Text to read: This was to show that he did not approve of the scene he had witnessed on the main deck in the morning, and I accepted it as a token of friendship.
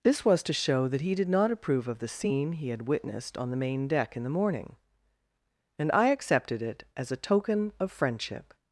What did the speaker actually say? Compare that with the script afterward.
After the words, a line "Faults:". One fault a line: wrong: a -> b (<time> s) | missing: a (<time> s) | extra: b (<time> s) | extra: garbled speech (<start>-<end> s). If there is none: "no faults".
This was to show that he did not approve of the scene he had witnessed on the main deck in the morning, and I accepted it as a token of friendship.
Faults:
no faults